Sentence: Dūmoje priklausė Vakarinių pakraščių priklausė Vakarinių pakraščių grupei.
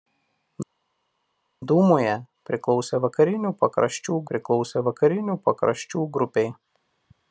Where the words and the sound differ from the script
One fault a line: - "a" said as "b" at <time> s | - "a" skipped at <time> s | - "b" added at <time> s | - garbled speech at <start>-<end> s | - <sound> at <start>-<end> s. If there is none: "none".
none